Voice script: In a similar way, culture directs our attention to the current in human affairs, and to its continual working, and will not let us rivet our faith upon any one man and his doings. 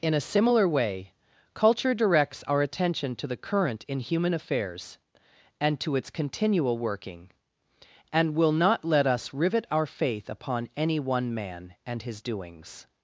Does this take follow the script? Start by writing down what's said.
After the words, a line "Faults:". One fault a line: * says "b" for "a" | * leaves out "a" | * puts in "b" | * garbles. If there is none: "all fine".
In a similar way, culture directs our attention to the current in human affairs, and to its continual working, and will not let us rivet our faith upon any one man and his doings.
Faults:
all fine